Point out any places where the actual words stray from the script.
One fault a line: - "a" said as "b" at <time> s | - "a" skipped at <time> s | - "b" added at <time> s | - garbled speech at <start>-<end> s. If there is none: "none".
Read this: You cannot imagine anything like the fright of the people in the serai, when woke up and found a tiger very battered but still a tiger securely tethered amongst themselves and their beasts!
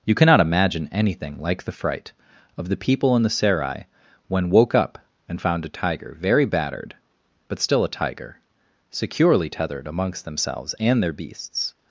none